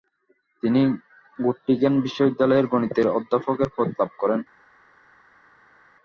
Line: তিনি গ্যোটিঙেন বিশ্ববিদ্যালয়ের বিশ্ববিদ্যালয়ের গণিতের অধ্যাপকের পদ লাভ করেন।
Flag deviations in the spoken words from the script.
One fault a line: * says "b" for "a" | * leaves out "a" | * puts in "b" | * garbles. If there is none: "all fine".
* leaves out "বিশ্ববিদ্যালয়ের"